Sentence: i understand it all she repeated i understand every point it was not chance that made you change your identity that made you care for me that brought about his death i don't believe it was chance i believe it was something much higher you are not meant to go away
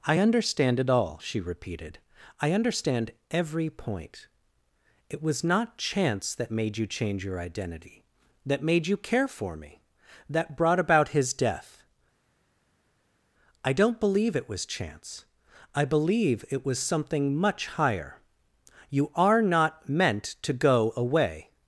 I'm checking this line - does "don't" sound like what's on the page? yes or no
yes